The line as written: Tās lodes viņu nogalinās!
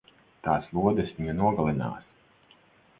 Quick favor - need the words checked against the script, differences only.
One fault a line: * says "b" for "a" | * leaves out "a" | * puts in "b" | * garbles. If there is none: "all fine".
all fine